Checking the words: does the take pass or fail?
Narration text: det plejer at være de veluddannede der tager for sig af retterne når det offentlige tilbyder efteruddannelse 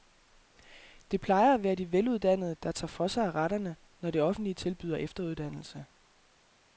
pass